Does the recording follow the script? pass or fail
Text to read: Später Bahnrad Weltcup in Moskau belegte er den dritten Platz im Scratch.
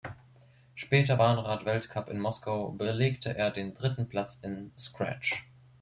pass